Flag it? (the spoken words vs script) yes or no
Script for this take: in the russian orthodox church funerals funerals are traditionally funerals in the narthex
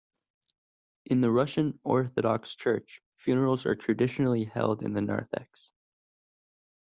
yes